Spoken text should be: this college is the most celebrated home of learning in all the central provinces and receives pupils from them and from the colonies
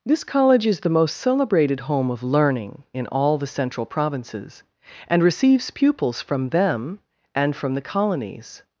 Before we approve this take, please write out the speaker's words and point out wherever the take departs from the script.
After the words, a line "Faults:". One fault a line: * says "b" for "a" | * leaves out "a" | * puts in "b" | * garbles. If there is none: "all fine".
this college is the most celebrated home of learning in all the central provinces and receives pupils from them and from the colonies
Faults:
all fine